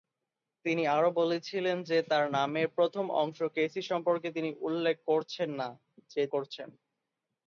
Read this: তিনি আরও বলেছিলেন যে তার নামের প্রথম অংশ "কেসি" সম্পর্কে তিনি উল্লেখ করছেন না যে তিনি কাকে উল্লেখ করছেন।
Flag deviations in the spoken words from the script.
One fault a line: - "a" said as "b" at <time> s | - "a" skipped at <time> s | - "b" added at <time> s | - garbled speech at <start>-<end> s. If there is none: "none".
- "তিনি কাকে উল্লেখ" skipped at 6.2 s